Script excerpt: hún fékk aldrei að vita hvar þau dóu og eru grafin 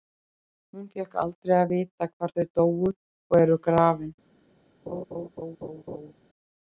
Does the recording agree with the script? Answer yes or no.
yes